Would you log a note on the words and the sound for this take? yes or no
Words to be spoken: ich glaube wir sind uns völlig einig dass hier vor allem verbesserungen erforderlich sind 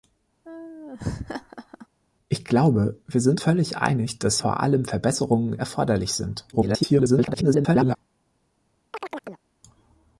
yes